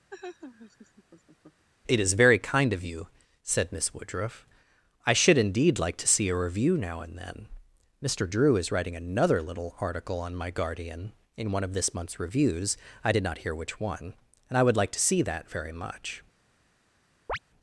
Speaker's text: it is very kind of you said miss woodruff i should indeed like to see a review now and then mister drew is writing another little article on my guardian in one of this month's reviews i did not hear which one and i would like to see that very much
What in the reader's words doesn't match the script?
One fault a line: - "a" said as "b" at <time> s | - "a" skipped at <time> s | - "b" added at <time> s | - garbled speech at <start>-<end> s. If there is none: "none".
none